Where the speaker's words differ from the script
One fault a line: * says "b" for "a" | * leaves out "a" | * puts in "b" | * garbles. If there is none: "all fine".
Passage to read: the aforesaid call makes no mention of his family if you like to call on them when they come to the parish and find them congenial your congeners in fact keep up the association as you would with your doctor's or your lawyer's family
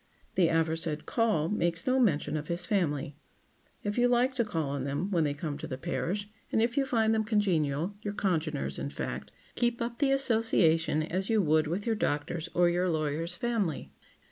* puts in "if you"